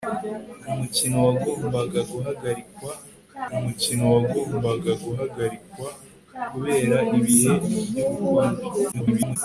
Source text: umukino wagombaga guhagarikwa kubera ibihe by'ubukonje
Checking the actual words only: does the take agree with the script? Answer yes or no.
no